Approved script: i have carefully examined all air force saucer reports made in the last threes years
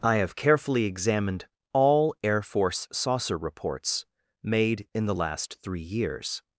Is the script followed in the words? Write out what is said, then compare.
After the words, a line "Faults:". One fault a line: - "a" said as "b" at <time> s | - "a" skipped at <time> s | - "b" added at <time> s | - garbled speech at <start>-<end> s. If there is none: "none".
i have carefully examined all air force saucer reports made in the last three years
Faults:
- "threes" said as "three" at 5.6 s